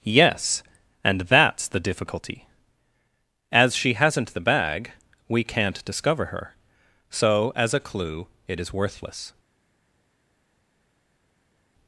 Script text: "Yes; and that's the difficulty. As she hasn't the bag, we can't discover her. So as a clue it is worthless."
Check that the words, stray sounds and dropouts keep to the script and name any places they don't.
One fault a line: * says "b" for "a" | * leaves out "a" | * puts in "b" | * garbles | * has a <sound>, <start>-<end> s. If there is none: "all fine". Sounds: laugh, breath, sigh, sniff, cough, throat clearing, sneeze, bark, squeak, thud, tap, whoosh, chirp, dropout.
all fine